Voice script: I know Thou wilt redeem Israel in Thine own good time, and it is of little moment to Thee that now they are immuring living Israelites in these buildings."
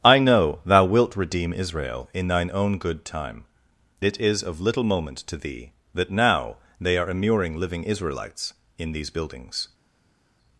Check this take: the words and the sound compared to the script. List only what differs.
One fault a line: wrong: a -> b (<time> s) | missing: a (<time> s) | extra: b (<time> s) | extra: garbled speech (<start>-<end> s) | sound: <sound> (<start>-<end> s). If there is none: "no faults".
missing: and (3.5 s)